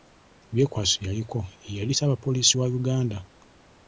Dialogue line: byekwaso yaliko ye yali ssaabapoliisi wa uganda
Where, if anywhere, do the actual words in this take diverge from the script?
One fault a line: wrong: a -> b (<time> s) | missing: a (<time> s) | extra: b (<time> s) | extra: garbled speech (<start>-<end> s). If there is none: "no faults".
no faults